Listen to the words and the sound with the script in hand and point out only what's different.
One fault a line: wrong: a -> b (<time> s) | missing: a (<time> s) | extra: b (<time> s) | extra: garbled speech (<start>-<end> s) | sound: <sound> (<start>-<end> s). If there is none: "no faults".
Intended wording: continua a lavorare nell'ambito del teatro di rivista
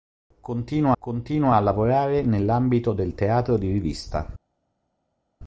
extra: continua (1.0 s)